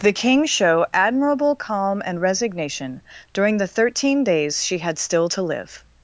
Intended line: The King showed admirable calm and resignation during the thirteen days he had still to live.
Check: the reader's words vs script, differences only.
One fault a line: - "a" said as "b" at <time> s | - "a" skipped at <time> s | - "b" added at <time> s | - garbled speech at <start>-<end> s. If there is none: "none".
- "showed" said as "show" at 0.4 s
- "he" said as "she" at 4.6 s